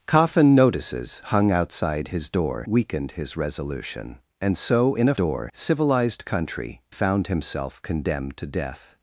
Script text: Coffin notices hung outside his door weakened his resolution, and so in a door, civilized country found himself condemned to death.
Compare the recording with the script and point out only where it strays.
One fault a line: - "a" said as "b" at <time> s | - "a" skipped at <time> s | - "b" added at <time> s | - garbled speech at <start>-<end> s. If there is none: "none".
none